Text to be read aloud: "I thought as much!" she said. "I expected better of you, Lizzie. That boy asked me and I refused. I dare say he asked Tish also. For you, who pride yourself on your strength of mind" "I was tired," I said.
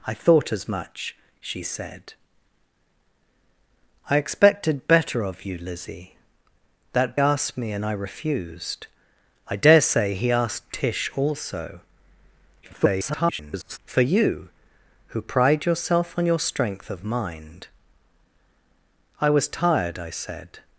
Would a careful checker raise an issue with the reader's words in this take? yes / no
yes